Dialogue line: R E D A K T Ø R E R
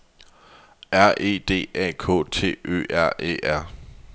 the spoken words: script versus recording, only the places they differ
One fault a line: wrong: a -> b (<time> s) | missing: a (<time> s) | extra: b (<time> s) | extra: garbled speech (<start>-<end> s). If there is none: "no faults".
no faults